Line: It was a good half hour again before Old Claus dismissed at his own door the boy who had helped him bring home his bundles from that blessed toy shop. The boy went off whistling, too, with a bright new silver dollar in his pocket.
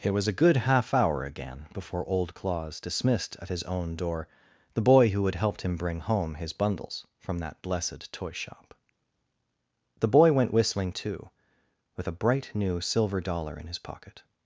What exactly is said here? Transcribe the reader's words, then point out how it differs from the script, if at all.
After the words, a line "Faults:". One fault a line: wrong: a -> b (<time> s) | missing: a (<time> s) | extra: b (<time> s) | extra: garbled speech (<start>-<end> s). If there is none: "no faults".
It was a good half hour again before Old Claus dismissed at his own door the boy who had helped him bring home his bundles from that blessed toy shop. The boy went whistling, too, with a bright new silver dollar in his pocket.
Faults:
missing: off (10.5 s)